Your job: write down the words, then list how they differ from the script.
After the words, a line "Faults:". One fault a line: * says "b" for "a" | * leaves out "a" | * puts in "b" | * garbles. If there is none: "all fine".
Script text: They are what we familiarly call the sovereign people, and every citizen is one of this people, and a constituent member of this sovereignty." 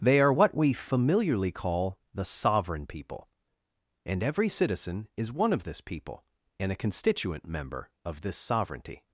They are what we familiarly call the sovereign people, and every citizen is one of this people, and a constituent member of this sovereignty."
Faults:
all fine